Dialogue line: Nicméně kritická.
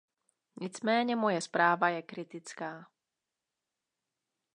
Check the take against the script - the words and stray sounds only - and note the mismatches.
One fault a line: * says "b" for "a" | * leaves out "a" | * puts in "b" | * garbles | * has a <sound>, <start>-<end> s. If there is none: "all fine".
* puts in "moje zpráva je"